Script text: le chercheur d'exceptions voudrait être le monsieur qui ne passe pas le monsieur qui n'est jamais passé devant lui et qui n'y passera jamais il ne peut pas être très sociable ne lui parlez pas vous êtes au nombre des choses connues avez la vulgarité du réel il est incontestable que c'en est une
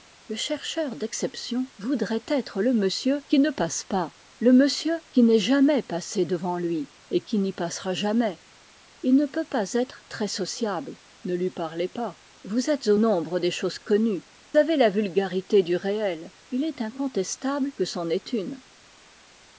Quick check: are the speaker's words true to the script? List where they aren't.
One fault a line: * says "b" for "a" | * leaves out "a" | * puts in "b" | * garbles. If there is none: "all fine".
all fine